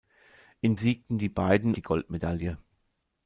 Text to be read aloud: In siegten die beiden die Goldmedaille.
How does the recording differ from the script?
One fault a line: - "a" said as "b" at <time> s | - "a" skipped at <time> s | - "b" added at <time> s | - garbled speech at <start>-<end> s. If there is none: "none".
none